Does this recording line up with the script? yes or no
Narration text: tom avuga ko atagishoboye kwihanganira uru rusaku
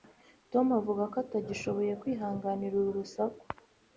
yes